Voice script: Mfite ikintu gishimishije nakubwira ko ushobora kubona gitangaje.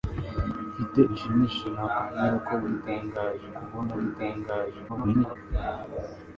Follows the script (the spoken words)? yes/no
no